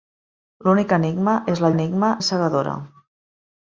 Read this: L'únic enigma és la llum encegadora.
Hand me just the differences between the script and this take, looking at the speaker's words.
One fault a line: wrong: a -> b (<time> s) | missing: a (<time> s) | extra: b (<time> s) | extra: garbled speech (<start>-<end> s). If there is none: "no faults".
wrong: llum -> enigma (1.7 s)